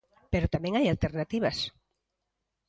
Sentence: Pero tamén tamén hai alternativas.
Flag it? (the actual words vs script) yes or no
yes